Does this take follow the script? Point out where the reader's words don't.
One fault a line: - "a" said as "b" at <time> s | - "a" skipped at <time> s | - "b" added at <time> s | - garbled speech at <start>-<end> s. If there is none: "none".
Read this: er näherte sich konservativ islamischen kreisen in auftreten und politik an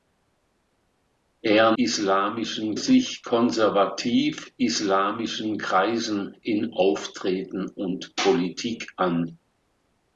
- "näherte" said as "islamischen" at 1.7 s